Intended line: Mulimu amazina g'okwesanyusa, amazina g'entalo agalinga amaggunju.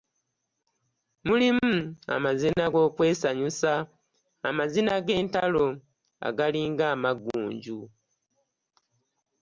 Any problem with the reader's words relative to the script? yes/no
no